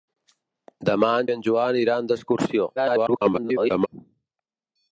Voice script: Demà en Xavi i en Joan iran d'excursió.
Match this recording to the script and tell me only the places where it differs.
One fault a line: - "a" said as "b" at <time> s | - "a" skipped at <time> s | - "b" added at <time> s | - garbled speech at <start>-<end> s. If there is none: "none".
- "Xavi" skipped at 1.3 s
- garbled speech at 2.8-3.9 s